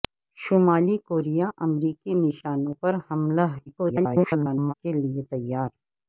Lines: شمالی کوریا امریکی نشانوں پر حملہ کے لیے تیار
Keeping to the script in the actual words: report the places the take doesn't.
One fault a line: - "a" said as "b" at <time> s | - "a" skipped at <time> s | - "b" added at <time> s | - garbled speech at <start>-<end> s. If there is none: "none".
- garbled speech at 3.7-4.7 s